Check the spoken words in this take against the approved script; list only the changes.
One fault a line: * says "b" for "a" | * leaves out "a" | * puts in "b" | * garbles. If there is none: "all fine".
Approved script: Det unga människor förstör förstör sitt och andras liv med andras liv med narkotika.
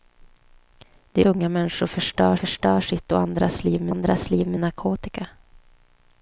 all fine